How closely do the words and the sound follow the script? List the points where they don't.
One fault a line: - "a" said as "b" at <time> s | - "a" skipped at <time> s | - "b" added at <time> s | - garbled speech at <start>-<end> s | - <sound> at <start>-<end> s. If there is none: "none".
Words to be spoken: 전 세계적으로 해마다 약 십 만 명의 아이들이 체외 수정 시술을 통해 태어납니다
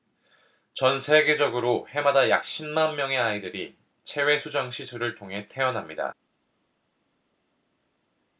none